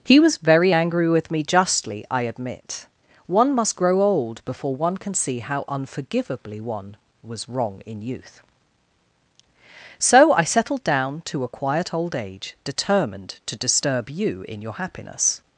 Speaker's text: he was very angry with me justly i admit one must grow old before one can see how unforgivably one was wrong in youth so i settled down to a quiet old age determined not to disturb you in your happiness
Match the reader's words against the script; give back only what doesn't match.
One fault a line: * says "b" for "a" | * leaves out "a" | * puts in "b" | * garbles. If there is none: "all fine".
* leaves out "not"